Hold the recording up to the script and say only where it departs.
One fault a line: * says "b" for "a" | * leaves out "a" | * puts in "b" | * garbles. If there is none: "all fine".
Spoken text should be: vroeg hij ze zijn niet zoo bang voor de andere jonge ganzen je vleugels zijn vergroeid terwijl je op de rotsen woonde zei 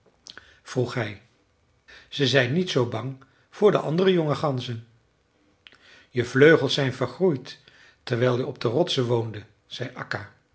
all fine